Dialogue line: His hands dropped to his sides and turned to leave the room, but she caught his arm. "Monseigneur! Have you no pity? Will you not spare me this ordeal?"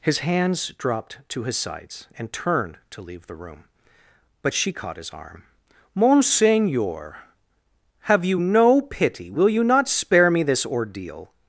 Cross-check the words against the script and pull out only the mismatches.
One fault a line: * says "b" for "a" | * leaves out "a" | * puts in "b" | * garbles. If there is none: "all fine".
all fine